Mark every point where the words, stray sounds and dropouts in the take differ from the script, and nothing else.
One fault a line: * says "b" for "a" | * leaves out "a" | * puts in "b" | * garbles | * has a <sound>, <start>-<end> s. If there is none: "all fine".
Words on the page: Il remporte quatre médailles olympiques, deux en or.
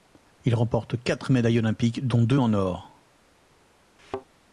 * puts in "dont"
* has a thud, 4.0-4.3 s